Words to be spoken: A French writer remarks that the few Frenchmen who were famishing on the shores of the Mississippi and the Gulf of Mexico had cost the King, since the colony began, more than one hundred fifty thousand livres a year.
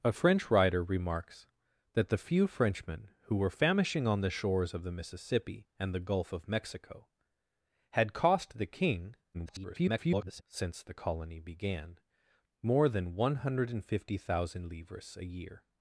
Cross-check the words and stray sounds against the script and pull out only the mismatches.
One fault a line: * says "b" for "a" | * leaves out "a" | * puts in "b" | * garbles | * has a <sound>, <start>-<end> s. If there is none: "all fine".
* garbles